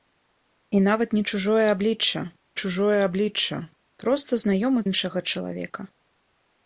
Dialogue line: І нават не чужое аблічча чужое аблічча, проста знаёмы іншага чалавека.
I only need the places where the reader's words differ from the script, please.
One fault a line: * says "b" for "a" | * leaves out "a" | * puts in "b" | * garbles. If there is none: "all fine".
all fine